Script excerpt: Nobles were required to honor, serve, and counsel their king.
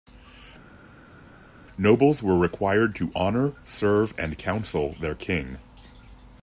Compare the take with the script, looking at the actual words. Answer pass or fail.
pass